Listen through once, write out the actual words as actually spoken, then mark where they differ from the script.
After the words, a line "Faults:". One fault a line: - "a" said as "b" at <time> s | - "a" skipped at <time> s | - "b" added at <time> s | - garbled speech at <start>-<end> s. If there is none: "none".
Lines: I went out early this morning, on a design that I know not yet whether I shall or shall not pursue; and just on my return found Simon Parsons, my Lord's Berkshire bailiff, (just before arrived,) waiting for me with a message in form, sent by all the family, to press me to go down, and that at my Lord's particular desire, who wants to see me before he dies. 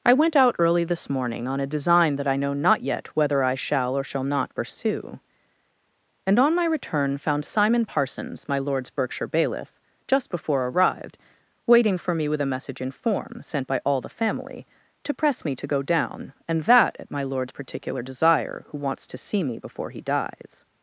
I went out early this morning, on a design that I know not yet whether I shall or shall not pursue; and on my return found Simon Parsons, my Lord's Berkshire bailiff, (just before arrived,) waiting for me with a message in form, sent by all the family, to press me to go down, and that at my Lord's particular desire, who wants to see me before he dies.
Faults:
- "just" skipped at 6.4 s